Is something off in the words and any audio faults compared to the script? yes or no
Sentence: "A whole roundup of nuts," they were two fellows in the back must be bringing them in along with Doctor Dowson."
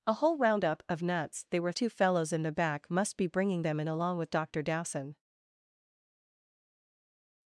no